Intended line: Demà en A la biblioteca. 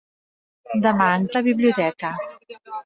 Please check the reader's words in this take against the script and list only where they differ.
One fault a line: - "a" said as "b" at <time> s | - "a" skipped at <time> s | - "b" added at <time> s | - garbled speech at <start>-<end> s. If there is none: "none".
none